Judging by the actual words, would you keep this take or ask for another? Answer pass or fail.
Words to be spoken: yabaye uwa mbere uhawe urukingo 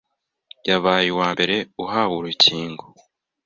pass